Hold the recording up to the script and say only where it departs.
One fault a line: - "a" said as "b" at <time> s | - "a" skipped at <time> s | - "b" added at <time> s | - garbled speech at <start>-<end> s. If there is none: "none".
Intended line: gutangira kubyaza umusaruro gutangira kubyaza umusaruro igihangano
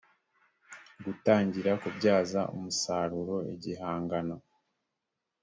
- "gutangira kubyaza umusaruro" skipped at 3.4 s